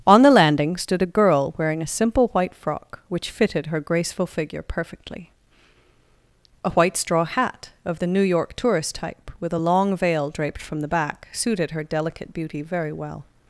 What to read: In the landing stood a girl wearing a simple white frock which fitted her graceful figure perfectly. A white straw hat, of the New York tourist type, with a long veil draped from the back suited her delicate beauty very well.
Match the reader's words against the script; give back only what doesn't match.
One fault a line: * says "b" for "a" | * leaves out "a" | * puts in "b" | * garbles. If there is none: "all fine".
* says "On" for "In"